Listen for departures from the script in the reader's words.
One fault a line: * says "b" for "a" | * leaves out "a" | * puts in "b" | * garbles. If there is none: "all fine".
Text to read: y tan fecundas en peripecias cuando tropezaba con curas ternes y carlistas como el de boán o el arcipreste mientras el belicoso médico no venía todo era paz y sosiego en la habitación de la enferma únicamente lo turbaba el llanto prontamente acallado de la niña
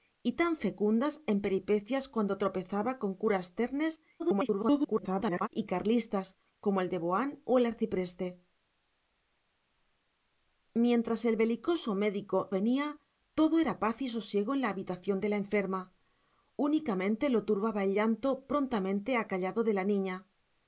* garbles
* leaves out "no"